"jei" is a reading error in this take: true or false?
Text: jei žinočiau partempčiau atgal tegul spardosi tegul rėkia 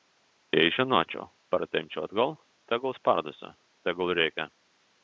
false